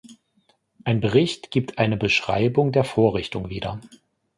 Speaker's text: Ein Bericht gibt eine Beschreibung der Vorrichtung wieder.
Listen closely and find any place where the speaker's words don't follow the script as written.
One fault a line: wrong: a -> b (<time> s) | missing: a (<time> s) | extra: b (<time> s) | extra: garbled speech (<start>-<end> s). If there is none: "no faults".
no faults